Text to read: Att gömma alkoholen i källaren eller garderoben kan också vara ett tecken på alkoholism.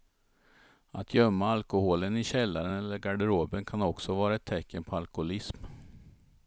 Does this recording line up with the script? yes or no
yes